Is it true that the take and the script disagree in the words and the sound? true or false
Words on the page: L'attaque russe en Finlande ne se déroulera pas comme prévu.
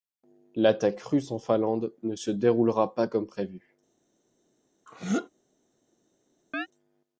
true